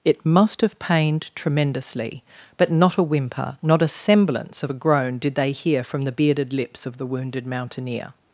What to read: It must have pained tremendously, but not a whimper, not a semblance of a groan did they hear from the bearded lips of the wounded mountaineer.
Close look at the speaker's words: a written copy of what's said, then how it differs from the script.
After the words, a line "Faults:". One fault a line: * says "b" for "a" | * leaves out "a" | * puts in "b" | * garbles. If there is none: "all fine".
It must have pained tremendously, but not a whimper, not a semblance of a groan did they hear from the bearded lips of the wounded mountaineer.
Faults:
all fine